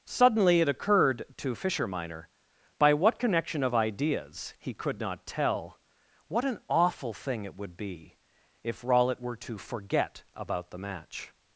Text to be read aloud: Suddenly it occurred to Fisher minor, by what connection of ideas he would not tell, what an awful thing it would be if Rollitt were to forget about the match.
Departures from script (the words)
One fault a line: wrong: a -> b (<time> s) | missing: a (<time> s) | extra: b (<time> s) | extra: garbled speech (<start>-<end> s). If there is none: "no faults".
wrong: would -> could (4.7 s)